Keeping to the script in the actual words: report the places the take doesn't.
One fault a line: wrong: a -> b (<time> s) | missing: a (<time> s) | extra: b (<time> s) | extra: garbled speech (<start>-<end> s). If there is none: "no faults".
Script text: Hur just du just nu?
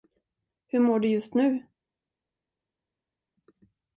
wrong: just -> mår (0.8 s)